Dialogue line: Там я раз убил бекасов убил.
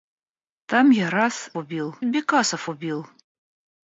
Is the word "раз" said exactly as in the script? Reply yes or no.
yes